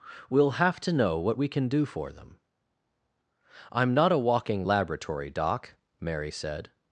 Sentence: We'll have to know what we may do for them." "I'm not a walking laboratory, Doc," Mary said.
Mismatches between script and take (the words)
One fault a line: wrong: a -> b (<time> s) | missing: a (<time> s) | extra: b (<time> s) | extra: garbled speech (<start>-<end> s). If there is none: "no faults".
wrong: may -> can (1.5 s)